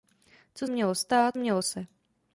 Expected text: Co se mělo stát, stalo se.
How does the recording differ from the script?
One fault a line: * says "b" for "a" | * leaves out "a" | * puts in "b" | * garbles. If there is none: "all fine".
* leaves out "se"
* says "mělo" for "stalo"